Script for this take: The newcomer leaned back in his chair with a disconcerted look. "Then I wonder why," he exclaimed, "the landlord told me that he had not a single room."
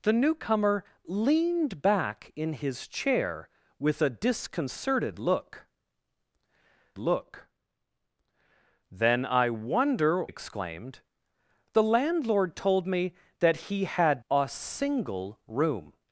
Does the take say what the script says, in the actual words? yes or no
no